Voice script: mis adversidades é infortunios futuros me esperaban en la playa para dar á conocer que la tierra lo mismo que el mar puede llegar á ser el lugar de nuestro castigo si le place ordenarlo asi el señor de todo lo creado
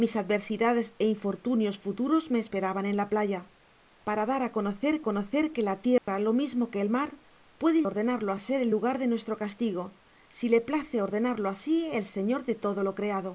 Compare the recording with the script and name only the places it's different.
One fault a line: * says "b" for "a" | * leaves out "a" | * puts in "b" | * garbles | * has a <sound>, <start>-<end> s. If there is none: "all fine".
* puts in "conocer"
* has a dropout, 6.0-6.1 s
* says "ordenarlo" for "llegar"